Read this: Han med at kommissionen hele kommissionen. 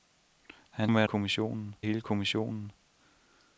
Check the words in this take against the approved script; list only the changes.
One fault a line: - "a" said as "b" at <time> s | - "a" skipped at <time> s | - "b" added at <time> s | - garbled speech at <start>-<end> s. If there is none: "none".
none